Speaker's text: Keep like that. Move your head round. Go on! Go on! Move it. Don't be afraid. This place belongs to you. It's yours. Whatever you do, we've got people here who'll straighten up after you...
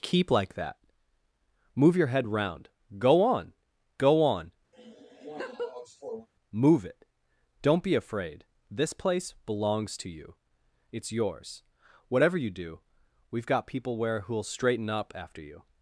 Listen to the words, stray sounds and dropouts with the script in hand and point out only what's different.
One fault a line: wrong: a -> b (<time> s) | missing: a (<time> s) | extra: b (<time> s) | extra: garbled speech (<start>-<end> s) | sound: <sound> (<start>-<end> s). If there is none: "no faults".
sound: laugh (4.7-6.3 s)
wrong: here -> where (14.0 s)